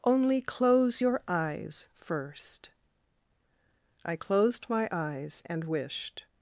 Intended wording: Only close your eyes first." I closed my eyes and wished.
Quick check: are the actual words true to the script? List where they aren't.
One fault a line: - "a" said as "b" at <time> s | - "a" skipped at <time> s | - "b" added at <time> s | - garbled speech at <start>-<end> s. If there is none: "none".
none